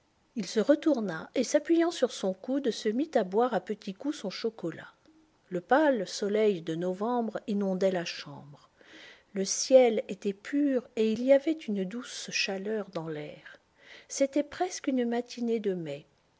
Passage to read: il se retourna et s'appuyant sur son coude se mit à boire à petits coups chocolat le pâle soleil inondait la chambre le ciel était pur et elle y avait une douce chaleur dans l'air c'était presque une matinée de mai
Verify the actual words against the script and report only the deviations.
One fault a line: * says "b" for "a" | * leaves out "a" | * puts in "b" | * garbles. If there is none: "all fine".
* puts in "son"
* puts in "de novembre"
* says "il" for "elle"